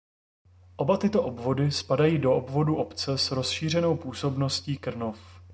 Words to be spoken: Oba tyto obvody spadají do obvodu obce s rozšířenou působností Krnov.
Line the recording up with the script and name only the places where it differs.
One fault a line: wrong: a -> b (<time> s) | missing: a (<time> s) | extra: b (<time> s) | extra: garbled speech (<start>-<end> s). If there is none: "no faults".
no faults